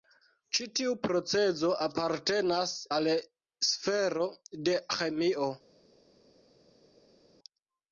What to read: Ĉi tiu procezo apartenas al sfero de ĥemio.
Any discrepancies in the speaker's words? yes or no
no